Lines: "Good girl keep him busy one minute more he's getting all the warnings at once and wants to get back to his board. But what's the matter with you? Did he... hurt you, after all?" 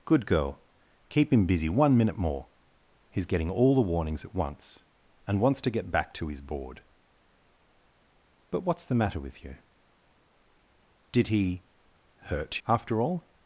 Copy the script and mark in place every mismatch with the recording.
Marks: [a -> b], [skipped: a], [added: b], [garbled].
"Good girl keep him busy one minute more he's getting all the warnings at once and wants to get back to his board. But what's the matter with you? Did he... hurt [skipped: you,] after all?"